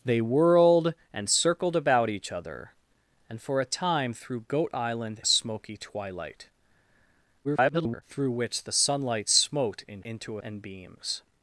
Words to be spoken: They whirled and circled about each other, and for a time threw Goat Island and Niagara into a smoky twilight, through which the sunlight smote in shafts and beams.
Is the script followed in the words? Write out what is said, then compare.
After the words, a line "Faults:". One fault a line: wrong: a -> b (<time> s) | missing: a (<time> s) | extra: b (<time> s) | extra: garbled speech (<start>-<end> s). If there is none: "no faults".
They whirled and circled about each other, and for a time threw Goat Island a smoky twilight, [garbled] through which the sunlight smote in into and beams.
Faults:
missing: and Niagara into (5.2 s)
extra: garbled speech (7.4-8.0 s)
wrong: shafts -> into (10.0 s)